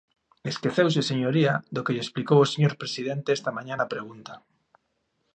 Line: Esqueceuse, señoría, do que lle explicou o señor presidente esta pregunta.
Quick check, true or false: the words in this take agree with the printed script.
false